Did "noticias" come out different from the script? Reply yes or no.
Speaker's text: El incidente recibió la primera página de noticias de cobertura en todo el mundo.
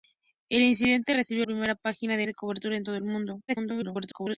yes